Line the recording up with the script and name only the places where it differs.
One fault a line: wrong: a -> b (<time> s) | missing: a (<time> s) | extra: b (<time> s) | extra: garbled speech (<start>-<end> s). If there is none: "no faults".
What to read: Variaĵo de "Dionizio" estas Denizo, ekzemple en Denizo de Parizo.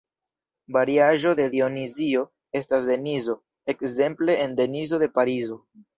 no faults